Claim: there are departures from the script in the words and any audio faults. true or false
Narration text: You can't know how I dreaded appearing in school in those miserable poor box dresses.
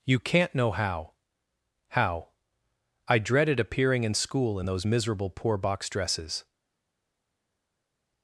true